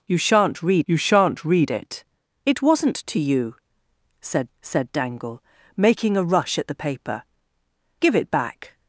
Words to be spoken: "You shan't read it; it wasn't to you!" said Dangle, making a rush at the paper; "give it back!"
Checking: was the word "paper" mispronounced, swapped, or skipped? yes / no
no